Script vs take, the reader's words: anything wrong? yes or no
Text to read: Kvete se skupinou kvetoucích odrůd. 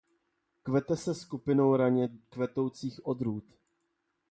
yes